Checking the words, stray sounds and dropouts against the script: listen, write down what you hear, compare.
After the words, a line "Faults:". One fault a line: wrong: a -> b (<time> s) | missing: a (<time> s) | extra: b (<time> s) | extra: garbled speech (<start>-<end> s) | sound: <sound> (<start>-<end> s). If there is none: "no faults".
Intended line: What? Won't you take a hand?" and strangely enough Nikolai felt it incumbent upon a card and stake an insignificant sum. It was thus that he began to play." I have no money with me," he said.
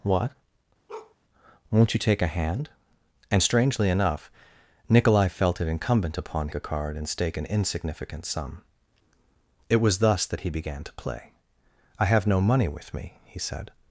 What? Won't you take a hand?" and strangely enough Nikolai felt it incumbent upon a card and stake an insignificant sum. It was thus that he began to play." I have no money with me," he said.
Faults:
sound: bark (0.9-1.2 s)